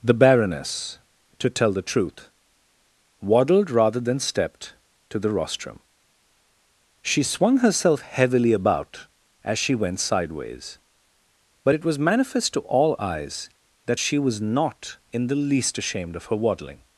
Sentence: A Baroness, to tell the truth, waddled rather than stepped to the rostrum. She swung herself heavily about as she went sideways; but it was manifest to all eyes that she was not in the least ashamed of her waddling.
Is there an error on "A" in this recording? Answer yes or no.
yes